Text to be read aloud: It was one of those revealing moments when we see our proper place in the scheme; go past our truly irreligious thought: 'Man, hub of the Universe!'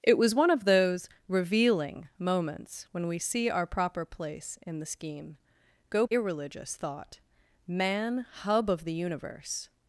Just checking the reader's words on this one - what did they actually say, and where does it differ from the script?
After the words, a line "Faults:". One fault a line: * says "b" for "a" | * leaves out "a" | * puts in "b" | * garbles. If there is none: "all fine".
It was one of those revealing moments when we see our proper place in the scheme; go irreligious thought: 'Man, hub of the Universe!'
Faults:
* leaves out "past our truly"